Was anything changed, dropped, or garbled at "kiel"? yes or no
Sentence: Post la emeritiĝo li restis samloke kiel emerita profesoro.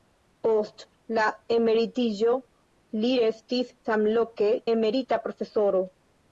yes